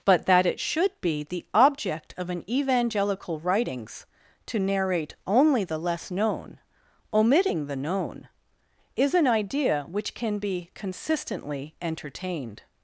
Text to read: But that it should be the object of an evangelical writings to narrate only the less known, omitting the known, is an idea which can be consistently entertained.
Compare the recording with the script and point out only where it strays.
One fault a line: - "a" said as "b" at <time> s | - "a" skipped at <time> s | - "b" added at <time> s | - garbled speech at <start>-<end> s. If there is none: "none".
none